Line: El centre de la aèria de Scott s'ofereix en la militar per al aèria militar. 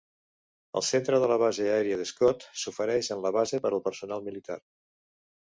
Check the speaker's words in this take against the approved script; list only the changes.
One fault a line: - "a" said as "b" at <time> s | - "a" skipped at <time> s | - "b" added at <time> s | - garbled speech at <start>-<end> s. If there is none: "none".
- "base" added at 1.4 s
- "militar" said as "base" at 3.4 s
- "aèria" said as "personal" at 3.9 s